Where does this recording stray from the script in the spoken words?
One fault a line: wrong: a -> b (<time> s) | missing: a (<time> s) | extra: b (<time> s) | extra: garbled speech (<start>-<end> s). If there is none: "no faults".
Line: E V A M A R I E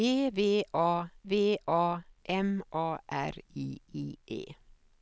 extra: V A (1.2 s)
extra: I (3.9 s)